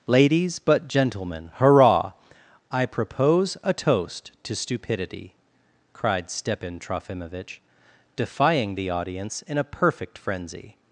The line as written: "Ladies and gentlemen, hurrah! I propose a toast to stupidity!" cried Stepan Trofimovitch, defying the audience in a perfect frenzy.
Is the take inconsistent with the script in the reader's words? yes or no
yes